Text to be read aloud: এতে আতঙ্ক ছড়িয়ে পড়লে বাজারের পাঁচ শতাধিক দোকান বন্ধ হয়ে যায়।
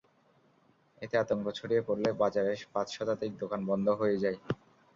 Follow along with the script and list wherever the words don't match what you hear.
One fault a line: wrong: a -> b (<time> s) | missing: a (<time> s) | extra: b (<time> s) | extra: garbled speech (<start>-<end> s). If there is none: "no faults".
no faults